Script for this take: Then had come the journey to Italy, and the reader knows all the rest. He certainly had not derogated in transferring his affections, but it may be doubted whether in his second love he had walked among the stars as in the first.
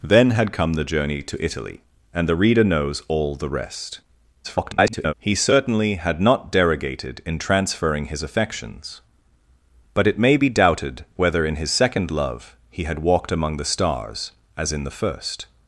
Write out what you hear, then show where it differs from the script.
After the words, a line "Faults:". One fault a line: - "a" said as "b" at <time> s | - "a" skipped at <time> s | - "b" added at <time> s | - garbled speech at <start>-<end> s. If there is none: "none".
Then had come the journey to Italy, and the reader knows all the rest. [garbled] He certainly had not derogated in transferring his affections, but it may be doubted whether in his second love he had walked among the stars as in the first.
Faults:
- garbled speech at 4.4-5.1 s